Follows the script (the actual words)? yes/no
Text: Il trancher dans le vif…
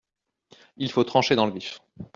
no